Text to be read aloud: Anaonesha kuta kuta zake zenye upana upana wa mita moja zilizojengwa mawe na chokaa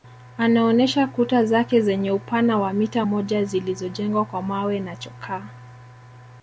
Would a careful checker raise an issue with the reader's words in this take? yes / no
yes